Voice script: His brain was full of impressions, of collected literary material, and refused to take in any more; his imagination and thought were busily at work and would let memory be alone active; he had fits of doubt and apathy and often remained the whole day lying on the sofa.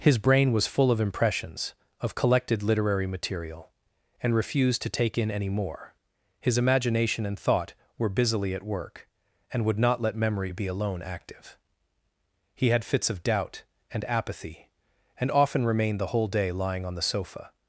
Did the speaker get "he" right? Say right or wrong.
right